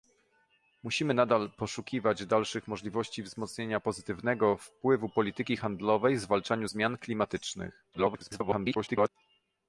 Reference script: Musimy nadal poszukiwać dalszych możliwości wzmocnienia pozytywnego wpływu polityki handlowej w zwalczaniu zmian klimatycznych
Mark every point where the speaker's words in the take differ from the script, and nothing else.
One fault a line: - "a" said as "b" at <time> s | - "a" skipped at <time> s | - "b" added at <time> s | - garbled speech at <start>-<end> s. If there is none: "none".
- garbled speech at 7.9-9.1 s